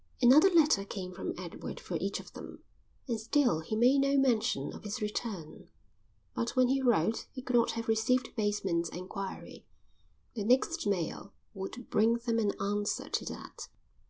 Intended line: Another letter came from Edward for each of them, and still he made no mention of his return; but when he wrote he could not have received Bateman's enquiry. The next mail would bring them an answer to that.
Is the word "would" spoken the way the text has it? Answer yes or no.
yes